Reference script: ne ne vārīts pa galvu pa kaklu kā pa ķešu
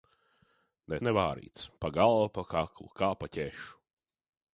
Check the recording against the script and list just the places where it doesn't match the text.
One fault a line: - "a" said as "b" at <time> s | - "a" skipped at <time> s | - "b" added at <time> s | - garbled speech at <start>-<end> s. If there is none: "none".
none